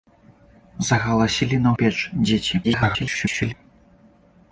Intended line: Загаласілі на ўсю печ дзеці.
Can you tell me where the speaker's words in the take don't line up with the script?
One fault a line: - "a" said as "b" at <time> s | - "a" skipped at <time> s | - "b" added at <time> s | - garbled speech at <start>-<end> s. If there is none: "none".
- "ўсю" skipped at 1.7 s
- garbled speech at 2.6-3.5 s